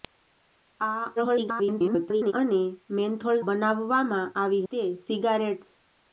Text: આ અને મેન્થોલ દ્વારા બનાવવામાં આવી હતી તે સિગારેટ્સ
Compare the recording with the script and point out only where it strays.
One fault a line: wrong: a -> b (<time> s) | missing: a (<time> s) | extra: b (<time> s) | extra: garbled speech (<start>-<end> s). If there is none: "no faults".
extra: garbled speech (1.2-2.3 s)
missing: દ્વારા (3.4 s)
missing: હતી (4.7 s)